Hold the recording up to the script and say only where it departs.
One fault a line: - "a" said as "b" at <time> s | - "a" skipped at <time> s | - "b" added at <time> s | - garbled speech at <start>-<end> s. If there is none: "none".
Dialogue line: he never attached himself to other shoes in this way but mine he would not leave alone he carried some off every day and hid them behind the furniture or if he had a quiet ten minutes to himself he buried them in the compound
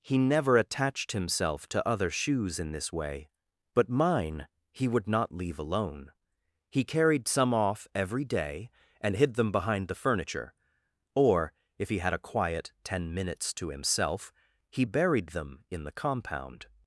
none